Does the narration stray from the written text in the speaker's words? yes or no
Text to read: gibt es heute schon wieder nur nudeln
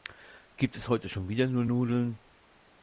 no